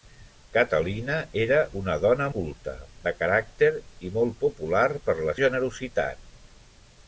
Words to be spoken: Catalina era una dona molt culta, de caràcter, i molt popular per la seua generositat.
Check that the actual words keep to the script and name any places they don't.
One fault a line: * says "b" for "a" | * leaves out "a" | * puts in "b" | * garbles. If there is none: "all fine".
* leaves out "molt"
* leaves out "seua"